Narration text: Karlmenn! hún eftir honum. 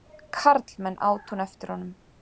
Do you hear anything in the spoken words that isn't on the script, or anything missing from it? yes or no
yes